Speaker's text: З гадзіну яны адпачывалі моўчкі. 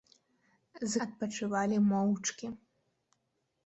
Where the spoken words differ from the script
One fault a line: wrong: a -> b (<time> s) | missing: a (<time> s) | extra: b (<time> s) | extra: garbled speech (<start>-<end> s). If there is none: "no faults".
missing: гадзіну яны (1.0 s)